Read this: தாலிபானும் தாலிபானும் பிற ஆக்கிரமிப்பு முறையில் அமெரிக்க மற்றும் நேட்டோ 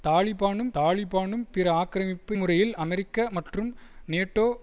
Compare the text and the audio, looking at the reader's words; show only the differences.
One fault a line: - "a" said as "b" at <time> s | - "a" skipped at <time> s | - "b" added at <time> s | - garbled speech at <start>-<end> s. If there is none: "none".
none